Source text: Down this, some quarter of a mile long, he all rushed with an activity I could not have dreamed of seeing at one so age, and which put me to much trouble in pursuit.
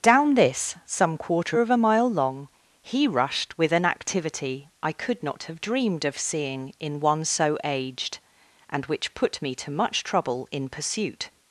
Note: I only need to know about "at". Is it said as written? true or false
false